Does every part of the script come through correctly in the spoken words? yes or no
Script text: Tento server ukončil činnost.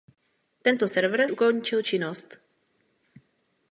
yes